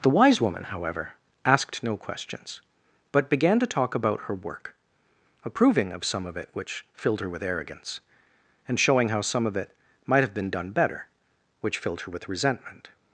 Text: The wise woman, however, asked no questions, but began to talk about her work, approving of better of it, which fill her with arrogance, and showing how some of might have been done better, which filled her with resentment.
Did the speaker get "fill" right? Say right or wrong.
wrong